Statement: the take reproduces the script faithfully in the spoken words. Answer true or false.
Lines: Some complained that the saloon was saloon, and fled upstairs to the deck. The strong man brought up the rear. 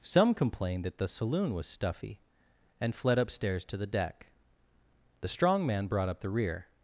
false